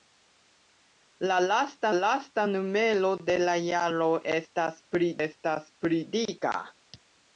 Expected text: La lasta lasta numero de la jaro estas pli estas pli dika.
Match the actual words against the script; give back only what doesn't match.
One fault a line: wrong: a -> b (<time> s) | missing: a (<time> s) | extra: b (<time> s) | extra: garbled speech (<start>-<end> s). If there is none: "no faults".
no faults